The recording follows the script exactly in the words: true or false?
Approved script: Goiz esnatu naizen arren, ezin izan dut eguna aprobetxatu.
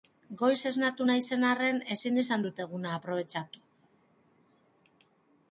true